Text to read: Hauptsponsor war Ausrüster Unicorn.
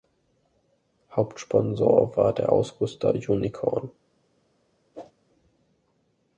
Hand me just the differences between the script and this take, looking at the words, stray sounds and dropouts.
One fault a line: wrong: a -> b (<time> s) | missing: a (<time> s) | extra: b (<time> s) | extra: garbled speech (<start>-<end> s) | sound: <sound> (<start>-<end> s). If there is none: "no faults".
extra: der (2.3 s)
sound: whoosh (4.9-5.1 s)